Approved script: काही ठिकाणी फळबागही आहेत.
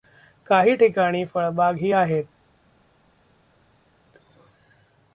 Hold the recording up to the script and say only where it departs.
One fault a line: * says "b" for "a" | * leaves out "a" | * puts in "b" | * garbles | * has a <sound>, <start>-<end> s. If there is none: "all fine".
all fine